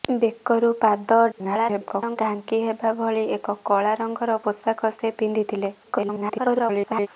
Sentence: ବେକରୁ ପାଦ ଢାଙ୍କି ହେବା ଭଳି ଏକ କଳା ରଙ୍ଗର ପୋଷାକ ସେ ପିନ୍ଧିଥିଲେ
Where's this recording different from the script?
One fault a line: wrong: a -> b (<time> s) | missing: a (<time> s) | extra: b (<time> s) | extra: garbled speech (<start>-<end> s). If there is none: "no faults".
extra: garbled speech (1.3-2.2 s)
extra: garbled speech (5.8-7.1 s)